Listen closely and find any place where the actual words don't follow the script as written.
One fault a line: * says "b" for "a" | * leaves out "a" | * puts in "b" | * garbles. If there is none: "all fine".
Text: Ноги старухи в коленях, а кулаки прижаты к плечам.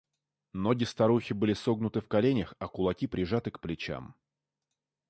* puts in "были согнуты"